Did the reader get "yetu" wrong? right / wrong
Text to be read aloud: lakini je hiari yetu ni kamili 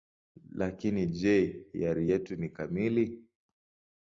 right